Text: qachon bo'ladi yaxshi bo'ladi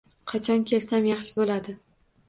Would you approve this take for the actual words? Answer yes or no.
no